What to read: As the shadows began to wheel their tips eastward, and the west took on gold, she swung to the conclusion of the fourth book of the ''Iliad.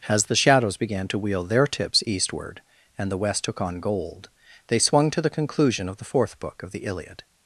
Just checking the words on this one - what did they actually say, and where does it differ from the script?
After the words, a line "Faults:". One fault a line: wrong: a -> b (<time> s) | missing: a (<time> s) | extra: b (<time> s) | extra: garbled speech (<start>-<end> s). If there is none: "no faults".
As the shadows began to wheel their tips eastward, and the west took on gold, they swung to the conclusion of the fourth book of the ''Iliad.
Faults:
wrong: she -> they (4.7 s)